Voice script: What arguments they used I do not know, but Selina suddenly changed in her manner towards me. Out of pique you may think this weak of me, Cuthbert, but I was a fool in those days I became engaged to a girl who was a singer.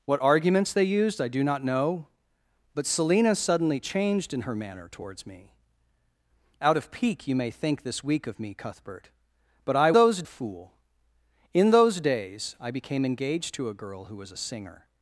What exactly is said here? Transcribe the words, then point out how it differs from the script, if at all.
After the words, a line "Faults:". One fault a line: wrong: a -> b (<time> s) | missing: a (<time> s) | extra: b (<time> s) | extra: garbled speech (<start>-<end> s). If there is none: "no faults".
What arguments they used I do not know, but Selina suddenly changed in her manner towards me. Out of pique you may think this weak of me, Cuthbert, but I those a fool in those days I became engaged to a girl who was a singer.
Faults:
wrong: was -> those (9.9 s)